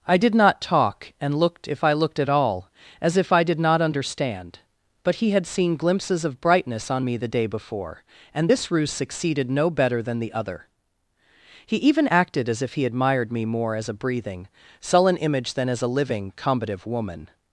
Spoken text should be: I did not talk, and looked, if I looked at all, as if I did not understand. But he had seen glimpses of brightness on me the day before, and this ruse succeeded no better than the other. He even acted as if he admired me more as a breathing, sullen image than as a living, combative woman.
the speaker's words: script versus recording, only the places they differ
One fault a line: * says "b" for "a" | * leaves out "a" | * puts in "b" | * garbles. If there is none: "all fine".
all fine